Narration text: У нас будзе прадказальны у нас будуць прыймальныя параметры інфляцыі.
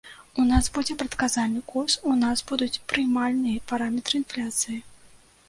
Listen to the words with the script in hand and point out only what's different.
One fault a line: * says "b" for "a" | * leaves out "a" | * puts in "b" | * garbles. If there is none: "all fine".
* puts in "курс"